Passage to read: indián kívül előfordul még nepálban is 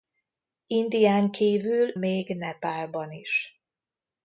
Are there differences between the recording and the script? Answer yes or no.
yes